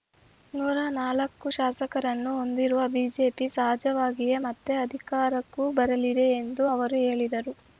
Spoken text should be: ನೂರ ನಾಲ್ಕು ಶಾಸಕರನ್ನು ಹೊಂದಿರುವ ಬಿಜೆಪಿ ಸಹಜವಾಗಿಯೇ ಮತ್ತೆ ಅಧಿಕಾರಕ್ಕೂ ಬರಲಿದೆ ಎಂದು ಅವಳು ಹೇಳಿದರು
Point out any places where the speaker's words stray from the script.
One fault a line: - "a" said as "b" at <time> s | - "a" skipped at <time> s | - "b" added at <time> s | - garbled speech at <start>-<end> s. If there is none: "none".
- "ಅವಳು" said as "ಅವರು" at 6.7 s